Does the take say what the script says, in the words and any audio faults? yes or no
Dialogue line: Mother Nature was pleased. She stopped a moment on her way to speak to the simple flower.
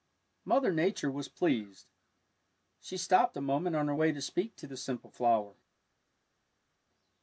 yes